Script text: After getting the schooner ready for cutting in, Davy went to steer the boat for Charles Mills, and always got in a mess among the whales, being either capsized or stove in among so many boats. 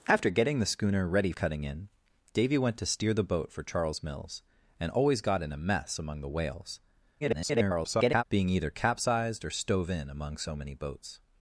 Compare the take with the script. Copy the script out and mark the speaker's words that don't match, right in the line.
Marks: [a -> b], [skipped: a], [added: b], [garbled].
After getting the schooner ready [skipped: for] cutting in, Davy went to steer the boat for Charles Mills, and always got in a mess among the whales, [garbled] being either capsized or stove in among so many boats.